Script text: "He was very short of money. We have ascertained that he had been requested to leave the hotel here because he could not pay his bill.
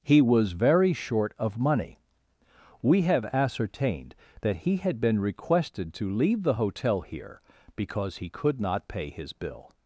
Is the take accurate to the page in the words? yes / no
yes